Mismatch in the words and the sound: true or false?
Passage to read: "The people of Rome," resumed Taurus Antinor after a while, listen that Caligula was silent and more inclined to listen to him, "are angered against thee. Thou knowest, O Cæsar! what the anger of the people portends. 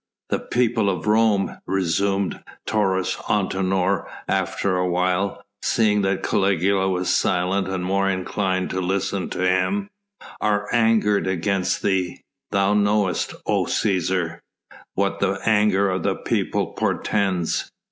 true